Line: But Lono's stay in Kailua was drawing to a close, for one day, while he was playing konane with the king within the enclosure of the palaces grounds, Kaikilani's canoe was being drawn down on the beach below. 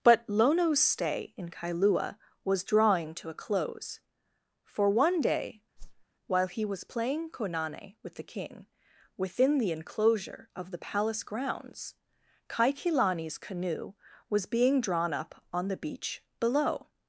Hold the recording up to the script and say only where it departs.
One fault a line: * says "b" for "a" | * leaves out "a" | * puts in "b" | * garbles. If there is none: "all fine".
* says "palace" for "palaces"
* says "up" for "down"